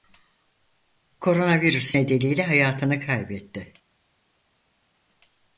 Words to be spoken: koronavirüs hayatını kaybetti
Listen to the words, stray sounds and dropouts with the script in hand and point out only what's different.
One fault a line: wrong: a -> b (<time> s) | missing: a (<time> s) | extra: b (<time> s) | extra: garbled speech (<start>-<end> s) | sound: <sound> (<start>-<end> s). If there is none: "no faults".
extra: nedeniyle (1.9 s)